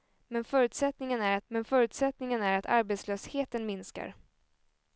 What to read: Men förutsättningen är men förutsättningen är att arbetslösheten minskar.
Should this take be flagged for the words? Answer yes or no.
no